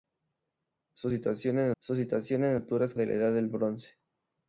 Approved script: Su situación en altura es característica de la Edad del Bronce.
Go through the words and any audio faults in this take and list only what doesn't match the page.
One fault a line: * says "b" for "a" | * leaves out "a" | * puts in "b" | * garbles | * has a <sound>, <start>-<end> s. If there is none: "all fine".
* puts in "su situación en"
* leaves out "característica"